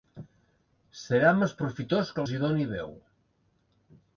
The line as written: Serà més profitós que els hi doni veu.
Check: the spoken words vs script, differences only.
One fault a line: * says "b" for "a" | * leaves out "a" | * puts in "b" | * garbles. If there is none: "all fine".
all fine